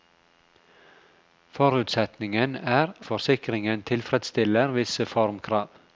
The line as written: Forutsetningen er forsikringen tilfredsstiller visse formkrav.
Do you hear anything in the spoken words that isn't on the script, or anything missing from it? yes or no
no